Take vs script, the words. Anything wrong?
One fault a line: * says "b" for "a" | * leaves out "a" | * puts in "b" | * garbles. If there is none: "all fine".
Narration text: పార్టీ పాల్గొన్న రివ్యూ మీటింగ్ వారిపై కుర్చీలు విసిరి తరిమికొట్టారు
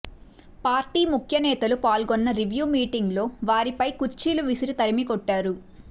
* puts in "ముఖ్యనేతలు"
* puts in "లో"